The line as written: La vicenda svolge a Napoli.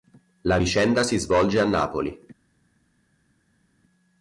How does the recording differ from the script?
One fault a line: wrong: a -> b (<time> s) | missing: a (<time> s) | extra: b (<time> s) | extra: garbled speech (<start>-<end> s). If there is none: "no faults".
extra: si (1.0 s)